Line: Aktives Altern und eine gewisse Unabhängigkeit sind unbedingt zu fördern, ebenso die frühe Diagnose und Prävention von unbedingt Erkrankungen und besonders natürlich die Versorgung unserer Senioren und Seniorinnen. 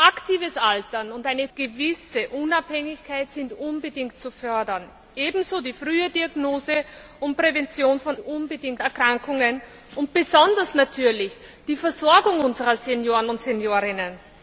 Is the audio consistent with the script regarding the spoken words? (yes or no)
yes